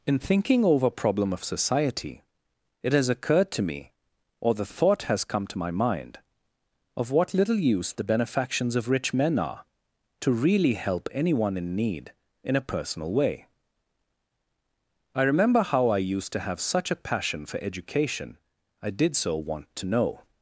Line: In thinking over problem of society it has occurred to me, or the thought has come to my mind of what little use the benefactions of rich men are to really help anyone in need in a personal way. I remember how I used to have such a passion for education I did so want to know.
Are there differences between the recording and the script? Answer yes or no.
no